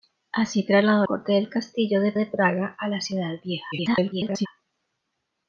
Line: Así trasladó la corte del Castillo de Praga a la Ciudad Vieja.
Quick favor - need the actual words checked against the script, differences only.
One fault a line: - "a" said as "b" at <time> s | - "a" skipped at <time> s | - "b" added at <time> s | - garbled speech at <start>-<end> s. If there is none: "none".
- "la" skipped at 1.1 s
- "de" added at 2.1 s
- garbled speech at 3.7-4.5 s